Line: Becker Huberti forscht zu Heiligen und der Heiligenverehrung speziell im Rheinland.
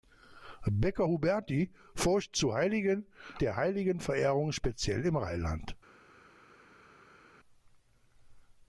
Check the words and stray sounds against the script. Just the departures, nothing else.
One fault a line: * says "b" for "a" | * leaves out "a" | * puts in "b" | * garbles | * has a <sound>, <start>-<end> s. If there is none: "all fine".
* leaves out "und"